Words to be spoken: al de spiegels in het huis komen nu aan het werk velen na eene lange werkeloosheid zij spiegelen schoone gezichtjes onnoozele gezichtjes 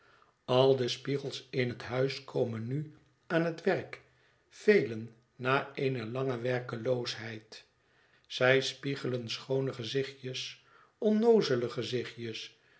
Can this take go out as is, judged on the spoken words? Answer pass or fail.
pass